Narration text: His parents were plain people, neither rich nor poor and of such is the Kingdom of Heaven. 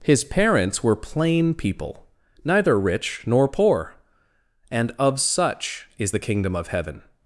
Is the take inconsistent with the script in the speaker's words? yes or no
no